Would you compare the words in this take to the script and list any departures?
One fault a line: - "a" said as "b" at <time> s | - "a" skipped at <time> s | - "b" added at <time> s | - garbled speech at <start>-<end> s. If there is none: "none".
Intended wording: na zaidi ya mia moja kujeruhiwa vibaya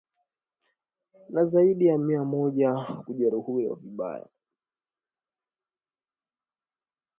none